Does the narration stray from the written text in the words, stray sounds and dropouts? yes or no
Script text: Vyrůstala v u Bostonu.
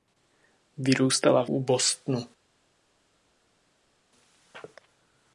no